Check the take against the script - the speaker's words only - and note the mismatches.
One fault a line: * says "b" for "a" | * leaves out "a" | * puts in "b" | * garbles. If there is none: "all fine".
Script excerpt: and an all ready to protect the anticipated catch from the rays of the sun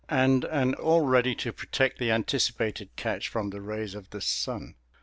all fine